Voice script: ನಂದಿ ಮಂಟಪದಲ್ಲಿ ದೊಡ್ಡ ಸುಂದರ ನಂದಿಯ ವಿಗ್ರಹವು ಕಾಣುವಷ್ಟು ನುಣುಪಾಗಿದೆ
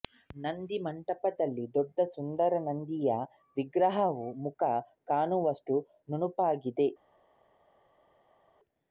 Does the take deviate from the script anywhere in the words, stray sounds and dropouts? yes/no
yes